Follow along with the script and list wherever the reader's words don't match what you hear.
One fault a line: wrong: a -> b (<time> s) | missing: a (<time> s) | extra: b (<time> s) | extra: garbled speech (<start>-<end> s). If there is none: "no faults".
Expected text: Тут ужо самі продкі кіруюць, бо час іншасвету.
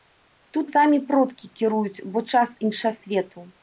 missing: ужо (0.7 s)